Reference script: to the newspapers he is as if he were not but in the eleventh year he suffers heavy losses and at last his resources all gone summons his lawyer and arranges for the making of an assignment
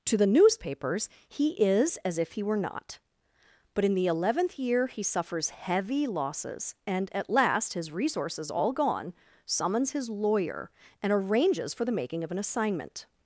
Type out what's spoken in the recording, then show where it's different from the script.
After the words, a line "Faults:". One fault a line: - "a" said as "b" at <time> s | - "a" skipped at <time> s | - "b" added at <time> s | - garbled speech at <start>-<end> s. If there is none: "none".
to the newspapers he is as if he were not but in the eleventh year he suffers heavy losses and at last his resources all gone summons his lawyer and arranges for the making of an assignment
Faults:
none